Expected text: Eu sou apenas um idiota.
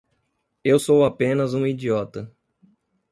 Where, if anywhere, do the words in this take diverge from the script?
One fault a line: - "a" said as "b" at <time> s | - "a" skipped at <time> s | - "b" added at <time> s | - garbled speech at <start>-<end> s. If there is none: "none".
none